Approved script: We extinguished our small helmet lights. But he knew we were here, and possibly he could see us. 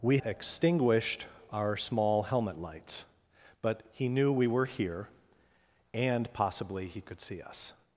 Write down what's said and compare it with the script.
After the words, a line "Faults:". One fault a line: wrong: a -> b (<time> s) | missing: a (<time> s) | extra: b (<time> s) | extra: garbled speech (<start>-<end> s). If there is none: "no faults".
We extinguished our small helmet lights. But he knew we were here, and possibly he could see us.
Faults:
no faults